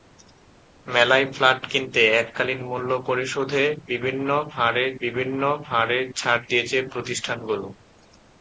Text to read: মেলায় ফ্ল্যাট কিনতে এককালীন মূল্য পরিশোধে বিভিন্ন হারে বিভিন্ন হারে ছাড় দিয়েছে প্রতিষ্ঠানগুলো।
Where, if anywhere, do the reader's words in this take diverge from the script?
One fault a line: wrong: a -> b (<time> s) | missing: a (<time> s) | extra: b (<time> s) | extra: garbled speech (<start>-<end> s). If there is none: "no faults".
no faults